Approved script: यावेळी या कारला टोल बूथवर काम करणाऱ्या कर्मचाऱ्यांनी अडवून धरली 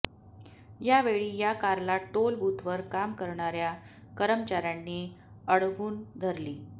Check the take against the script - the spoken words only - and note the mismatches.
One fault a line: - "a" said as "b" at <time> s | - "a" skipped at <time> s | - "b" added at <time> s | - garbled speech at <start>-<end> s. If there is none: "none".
none